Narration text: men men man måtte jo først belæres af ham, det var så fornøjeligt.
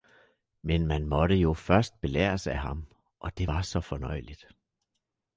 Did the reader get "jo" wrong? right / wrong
right